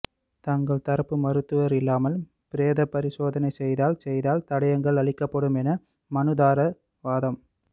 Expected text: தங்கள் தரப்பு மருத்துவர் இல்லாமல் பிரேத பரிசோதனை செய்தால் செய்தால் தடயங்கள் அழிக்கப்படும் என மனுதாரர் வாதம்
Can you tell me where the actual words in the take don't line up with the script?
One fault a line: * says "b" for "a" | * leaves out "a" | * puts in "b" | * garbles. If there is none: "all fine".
all fine